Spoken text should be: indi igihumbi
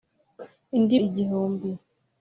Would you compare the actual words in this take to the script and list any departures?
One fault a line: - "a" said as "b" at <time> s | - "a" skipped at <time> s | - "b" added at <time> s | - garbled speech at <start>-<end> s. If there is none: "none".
none